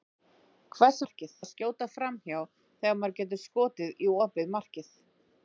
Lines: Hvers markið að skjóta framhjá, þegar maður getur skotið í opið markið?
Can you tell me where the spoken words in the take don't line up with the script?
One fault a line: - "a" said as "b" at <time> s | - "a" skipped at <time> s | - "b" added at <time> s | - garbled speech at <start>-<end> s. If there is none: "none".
none